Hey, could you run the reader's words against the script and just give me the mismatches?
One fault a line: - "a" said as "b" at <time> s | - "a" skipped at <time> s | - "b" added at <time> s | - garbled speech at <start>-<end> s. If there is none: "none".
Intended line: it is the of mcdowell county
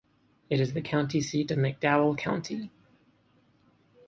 - "county seat" added at 0.8 s